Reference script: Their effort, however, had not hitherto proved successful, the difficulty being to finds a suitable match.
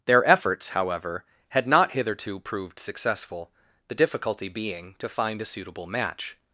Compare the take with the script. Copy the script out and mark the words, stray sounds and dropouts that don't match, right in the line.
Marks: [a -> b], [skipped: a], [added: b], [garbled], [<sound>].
Their [effort, -> efforts] however, had not hitherto proved successful, the difficulty being to [finds -> find] a suitable match.